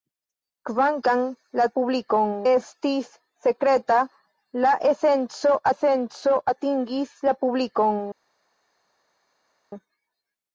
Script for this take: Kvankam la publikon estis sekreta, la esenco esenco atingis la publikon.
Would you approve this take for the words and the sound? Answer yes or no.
yes